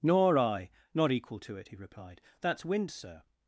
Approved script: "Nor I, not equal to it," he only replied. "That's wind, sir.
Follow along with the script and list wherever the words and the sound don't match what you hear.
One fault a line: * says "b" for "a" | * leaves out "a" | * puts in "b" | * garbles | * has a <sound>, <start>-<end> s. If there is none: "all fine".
* leaves out "only"